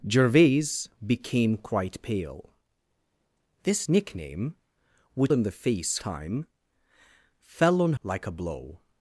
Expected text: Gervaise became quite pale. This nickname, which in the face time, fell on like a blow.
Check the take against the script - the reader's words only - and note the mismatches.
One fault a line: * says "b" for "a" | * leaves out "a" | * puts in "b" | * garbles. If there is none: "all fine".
all fine